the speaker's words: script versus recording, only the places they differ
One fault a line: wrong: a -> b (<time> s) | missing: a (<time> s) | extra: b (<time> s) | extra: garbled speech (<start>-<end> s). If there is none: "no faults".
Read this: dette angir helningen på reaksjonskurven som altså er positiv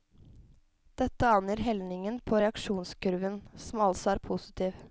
no faults